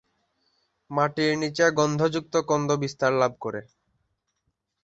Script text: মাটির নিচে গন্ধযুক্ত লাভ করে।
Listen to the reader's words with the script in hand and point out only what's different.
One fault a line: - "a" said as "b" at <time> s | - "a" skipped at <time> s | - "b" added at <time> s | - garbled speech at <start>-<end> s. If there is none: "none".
- "কন্দ বিস্তার" added at 2.5 s